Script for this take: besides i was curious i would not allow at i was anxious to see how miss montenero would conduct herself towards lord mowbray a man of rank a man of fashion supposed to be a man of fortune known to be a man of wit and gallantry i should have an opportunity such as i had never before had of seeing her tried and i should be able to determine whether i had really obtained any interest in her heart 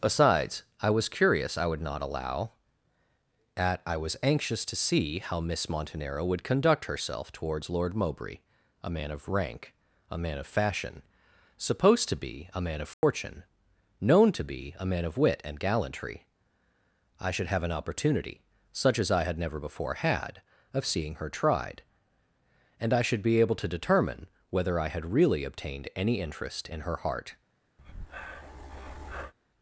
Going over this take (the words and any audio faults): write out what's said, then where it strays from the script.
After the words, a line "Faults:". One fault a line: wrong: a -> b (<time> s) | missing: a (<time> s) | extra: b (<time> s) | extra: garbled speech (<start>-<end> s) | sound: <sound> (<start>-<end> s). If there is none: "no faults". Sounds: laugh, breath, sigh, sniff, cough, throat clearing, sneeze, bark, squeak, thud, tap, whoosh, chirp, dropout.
besides i was curious i would not allow at i was anxious to see how miss montenero would conduct herself towards lord mowbray a man of rank a man of fashion supposed to be a man of fortune known to be a man of wit and gallantry i should have an opportunity such as i had never before had of seeing her tried and i should be able to determine whether i had really obtained any interest in her heart
Faults:
sound: dropout (12.9-13.0 s)
sound: breath (27.8-29.3 s)